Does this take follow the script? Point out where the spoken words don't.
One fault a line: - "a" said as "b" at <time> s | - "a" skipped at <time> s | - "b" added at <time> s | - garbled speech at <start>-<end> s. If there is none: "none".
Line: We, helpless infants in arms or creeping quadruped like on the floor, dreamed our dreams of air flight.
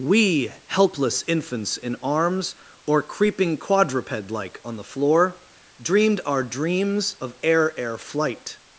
- "air" added at 7.8 s